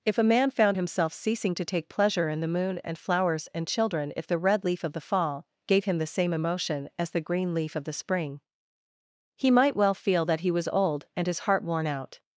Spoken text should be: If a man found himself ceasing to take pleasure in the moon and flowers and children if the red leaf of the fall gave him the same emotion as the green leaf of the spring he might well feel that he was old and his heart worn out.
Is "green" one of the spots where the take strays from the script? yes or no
no